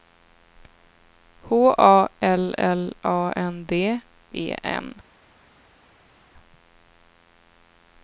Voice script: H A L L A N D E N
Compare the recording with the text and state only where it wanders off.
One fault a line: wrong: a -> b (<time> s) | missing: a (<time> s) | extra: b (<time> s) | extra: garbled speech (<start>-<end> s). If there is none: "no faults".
no faults